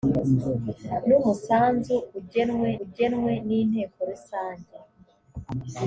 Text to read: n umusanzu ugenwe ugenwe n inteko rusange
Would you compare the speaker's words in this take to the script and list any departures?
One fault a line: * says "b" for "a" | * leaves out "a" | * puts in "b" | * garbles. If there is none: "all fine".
all fine